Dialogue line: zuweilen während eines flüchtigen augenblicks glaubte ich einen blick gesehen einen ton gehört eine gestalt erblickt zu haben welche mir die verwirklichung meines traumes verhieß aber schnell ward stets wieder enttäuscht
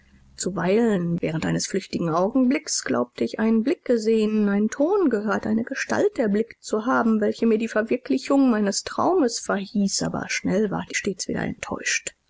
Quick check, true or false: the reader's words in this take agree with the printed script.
true